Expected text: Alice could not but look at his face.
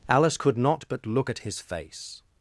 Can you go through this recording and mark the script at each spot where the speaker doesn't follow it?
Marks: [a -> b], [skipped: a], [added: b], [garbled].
Alice could not but look at his face.